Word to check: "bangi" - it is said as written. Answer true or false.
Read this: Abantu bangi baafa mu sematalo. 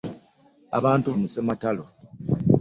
false